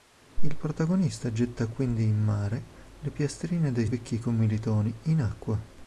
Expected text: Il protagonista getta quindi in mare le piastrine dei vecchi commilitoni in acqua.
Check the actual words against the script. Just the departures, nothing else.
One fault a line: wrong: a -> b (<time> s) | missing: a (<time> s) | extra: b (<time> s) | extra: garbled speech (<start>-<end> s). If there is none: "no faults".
no faults